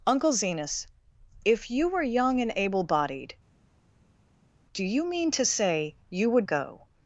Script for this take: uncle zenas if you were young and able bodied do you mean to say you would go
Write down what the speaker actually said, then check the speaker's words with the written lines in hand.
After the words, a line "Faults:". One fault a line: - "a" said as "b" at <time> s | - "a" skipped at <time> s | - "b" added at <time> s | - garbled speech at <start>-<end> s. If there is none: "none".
uncle zenas if you were young and able bodied do you mean to say you would go
Faults:
none